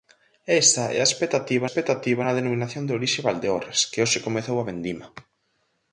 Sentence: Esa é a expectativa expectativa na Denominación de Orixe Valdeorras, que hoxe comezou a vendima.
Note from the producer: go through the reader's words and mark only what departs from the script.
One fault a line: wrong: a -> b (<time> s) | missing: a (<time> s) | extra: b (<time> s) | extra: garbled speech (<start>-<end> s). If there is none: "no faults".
no faults